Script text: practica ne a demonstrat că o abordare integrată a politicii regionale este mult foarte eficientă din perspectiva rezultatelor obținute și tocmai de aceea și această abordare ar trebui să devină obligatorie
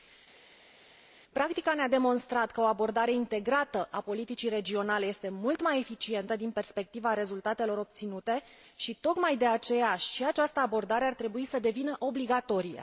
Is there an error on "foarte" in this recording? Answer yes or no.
yes